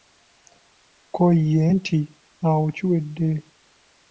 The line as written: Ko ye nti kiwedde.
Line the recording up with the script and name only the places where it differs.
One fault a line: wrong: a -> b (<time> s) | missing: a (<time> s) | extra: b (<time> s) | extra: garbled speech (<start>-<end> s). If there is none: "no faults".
extra: awo (2.5 s)